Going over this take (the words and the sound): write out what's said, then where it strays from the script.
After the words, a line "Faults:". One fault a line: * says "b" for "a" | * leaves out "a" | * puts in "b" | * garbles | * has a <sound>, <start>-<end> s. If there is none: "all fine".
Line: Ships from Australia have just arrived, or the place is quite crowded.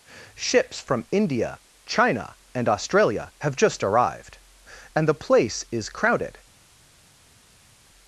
Ships from India, China, and Australia have just arrived, and the place is crowded.
Faults:
* puts in "India China and"
* says "and" for "or"
* leaves out "quite"